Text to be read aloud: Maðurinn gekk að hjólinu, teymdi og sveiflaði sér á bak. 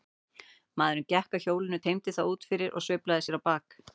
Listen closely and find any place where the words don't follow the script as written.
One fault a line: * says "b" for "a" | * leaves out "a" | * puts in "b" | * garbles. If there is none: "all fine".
* puts in "það út fyrir"